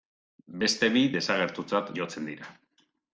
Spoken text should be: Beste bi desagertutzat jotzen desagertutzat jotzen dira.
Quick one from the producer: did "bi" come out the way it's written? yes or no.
yes